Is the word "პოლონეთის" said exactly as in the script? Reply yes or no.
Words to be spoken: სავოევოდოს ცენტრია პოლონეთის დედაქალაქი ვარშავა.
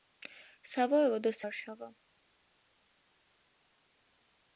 no